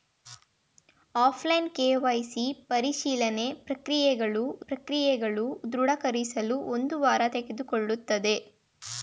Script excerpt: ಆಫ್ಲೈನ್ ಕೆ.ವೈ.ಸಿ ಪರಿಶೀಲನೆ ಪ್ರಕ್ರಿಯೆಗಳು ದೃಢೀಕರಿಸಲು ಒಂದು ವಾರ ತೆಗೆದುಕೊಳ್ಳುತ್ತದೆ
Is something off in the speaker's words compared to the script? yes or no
yes